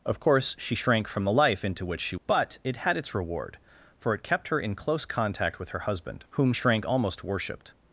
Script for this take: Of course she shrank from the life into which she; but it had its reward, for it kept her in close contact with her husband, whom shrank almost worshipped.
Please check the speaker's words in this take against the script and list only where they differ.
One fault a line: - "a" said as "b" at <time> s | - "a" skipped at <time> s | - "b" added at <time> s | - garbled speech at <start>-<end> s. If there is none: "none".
none